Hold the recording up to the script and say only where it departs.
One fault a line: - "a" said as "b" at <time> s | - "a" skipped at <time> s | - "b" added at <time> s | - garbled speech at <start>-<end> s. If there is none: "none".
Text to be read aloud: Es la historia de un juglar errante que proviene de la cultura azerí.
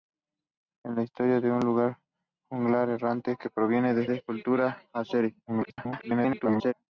- "de" added at 4.1 s
- garbled speech at 5.5-6.7 s